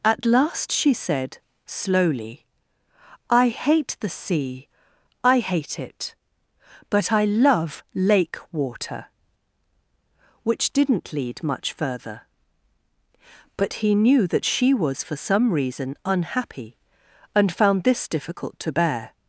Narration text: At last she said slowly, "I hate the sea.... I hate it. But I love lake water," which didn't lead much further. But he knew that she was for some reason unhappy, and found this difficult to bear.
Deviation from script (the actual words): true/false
false